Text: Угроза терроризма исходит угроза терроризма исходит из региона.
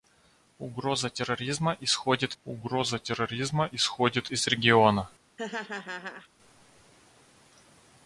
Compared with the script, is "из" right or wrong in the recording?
right